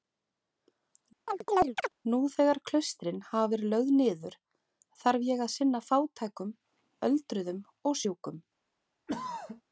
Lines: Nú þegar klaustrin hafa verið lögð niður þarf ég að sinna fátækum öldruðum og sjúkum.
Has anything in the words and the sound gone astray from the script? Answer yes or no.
yes